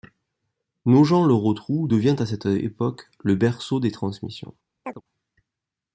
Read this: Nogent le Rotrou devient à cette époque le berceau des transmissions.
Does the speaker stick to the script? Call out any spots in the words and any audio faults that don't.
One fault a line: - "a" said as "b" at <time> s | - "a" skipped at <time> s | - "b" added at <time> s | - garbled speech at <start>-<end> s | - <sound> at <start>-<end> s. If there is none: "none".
- chirp at 4.8-5.0 s